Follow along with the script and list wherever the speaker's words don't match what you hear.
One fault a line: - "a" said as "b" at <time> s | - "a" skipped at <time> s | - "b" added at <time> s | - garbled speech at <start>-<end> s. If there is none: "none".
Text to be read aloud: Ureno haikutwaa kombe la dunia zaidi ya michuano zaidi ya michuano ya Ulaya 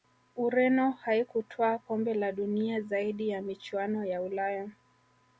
- "zaidi ya michuano" skipped at 4.0 s